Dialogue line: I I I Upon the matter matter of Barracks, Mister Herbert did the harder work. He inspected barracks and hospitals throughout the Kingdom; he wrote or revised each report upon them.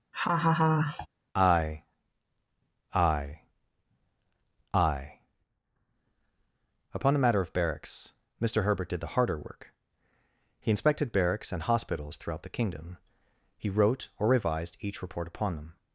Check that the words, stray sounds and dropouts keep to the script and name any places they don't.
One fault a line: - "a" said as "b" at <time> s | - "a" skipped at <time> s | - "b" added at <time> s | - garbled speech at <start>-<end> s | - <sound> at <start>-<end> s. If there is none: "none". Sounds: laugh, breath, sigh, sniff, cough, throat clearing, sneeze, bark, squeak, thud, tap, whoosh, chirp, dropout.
- laugh at 0.1-1.1 s
- "matter" skipped at 7.4 s